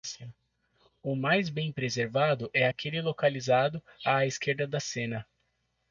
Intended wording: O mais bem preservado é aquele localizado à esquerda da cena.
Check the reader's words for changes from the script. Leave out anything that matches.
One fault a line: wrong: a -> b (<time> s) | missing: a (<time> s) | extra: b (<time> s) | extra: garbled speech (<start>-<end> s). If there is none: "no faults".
no faults